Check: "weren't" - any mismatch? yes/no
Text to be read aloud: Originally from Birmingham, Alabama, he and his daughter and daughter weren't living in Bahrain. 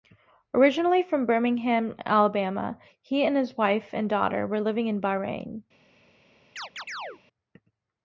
yes